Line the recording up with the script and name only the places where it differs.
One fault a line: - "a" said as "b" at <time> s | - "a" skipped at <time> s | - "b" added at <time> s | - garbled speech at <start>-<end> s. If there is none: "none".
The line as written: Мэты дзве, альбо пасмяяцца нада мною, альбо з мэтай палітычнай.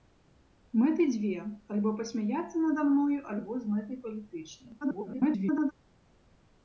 - garbled speech at 4.8-5.7 s